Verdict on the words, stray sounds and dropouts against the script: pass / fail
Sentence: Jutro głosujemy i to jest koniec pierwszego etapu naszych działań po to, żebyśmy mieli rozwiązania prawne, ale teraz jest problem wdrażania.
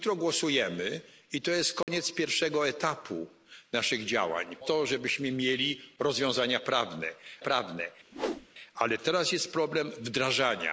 fail